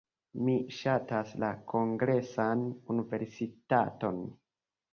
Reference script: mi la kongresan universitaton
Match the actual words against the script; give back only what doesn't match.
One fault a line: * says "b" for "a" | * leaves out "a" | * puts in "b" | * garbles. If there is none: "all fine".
* puts in "ŝatas"